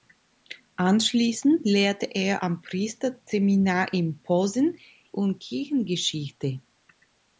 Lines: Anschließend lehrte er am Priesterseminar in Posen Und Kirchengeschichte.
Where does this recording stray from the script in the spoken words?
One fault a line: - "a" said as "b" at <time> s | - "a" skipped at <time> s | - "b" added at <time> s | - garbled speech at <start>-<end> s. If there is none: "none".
none